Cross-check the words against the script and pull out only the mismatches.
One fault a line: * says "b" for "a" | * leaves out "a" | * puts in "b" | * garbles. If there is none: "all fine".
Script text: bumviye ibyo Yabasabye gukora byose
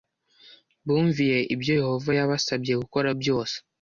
* puts in "Yehova"